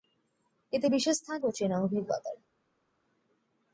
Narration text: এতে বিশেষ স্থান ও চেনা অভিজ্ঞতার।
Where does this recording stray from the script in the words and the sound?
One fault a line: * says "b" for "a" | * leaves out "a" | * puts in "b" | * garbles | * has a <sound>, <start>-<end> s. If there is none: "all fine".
all fine